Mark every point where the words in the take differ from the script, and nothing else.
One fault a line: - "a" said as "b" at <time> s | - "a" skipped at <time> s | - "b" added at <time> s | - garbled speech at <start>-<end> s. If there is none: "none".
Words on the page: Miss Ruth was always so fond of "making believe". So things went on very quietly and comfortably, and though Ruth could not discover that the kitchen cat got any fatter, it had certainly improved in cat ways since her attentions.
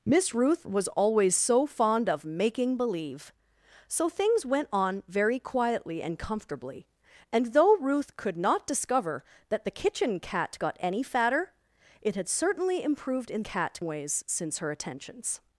none